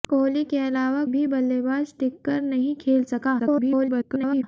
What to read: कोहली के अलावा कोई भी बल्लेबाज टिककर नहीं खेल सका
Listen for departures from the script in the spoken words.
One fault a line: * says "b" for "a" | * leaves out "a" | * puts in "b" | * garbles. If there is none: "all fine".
* leaves out "कोई"
* garbles